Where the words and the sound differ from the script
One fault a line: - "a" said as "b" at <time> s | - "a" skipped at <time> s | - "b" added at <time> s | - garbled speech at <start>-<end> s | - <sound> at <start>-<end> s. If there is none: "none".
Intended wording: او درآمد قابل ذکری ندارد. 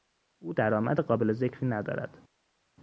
none